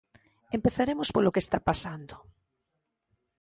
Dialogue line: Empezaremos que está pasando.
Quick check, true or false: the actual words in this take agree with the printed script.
false